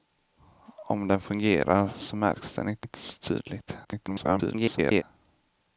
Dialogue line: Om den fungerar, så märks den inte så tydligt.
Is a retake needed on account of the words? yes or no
yes